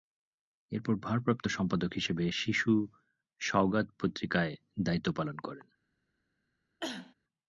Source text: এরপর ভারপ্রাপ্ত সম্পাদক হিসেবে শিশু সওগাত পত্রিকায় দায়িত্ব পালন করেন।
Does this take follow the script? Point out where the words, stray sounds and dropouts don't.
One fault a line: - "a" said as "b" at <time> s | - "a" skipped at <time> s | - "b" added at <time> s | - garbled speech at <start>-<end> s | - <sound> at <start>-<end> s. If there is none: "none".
- cough at 6.8-7.1 s